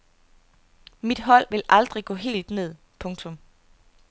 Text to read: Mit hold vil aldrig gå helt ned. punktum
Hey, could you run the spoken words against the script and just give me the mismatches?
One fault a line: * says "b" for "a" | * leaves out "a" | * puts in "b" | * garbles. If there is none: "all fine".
all fine